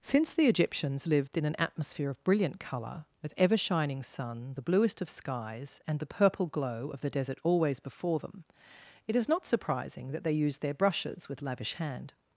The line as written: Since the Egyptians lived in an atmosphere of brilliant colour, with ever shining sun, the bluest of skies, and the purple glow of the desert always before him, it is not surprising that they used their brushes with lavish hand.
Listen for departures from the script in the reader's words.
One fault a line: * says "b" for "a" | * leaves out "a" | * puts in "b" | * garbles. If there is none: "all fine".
* says "them" for "him"